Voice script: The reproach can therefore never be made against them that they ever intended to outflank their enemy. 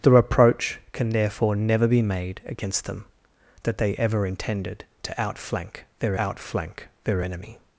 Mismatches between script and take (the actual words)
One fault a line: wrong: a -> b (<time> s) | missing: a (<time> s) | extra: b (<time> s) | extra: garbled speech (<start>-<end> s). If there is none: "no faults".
extra: outflank their (6.2 s)